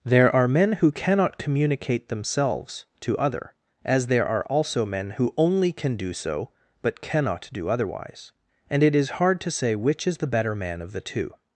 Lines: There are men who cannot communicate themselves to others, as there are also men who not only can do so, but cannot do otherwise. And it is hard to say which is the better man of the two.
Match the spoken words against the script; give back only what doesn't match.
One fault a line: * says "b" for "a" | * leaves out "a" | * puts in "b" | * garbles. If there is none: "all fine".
* says "other" for "others"
* leaves out "not"